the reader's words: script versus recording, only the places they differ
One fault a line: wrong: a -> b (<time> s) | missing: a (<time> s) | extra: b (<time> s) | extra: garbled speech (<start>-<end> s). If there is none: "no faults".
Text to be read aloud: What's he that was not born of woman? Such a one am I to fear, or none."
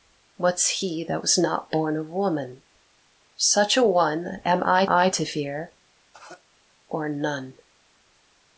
extra: I (4.9 s)